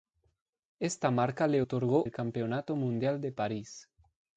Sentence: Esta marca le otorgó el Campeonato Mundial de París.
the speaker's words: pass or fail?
pass